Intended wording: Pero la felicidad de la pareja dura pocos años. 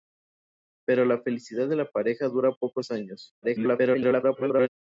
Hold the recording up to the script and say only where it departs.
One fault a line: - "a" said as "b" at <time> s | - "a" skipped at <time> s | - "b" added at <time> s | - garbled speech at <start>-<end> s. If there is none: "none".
- garbled speech at 3.4-4.7 s